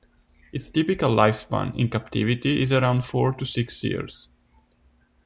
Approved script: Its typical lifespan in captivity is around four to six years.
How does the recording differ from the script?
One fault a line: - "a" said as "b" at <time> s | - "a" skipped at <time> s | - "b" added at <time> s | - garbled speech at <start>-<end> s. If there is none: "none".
none